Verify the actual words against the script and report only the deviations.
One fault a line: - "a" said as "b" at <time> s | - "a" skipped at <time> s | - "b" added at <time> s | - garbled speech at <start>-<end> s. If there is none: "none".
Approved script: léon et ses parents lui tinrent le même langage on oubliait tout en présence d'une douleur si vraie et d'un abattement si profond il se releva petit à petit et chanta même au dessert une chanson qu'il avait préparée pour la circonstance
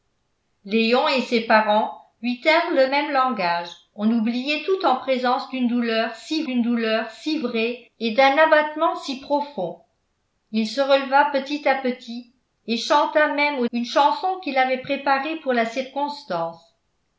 - "d'une douleur si" added at 6.4 s
- "dessert" skipped at 13.7 s